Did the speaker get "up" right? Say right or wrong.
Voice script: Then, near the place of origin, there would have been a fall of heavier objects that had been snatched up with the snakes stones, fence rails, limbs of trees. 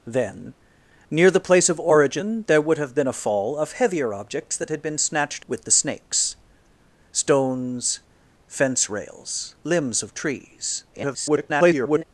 wrong